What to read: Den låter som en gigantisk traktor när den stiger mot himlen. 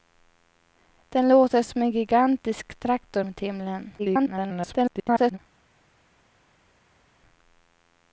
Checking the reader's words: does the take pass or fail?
fail